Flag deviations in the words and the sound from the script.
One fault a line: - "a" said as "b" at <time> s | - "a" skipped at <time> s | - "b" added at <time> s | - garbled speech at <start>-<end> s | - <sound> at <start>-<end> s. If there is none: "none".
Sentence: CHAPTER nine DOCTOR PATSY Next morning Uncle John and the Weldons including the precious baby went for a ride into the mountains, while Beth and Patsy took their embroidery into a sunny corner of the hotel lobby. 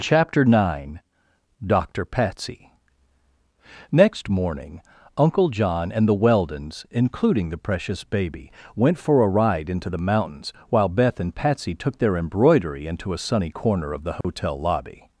- dropout at 14.2-14.2 s